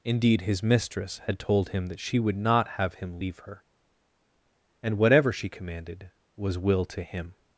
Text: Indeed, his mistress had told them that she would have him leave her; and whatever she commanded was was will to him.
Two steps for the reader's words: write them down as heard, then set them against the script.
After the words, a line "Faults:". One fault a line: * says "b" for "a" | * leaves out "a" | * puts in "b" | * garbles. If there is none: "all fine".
Indeed, his mistress had told him that she would not have him leave her; and whatever she commanded was will to him.
Faults:
* says "him" for "them"
* puts in "not"
* leaves out "was"